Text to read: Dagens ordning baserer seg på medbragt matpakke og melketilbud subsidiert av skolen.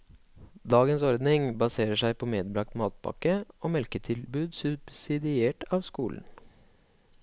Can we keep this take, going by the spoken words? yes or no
yes